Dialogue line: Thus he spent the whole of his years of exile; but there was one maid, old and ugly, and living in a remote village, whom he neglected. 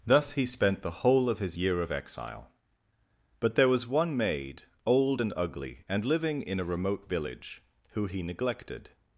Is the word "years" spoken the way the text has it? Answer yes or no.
no